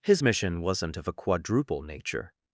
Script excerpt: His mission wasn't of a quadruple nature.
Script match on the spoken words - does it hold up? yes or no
yes